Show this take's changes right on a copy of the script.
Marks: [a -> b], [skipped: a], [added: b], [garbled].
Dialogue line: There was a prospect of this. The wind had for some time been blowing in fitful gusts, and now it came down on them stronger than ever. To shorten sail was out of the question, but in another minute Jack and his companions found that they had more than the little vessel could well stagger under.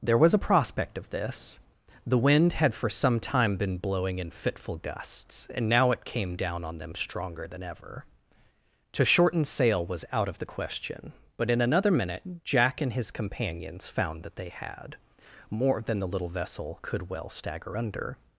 There was a prospect of this. The wind had for some time been blowing in fitful gusts, and now it came down on them stronger than ever. To shorten sail was out of the question, but in another minute Jack and his companions found that they had more than the little vessel could well stagger under.